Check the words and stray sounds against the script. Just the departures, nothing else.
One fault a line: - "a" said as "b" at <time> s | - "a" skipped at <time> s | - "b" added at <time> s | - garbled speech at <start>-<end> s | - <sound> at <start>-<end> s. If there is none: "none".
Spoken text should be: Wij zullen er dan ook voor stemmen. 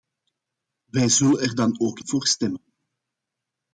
none